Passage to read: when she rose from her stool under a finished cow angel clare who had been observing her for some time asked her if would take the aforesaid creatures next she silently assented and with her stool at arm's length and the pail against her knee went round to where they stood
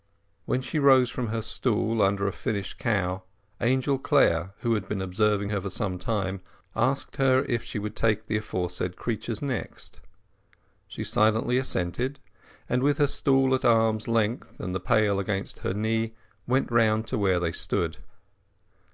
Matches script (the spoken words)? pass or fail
fail